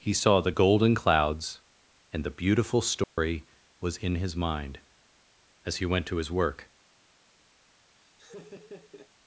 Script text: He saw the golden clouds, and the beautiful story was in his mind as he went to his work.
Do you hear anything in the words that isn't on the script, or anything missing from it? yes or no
no